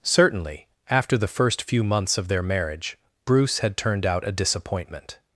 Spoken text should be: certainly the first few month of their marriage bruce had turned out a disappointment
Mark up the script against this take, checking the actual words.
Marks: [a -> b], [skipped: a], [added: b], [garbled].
certainly [added: after] the first few [month -> months] of their marriage bruce had turned out a disappointment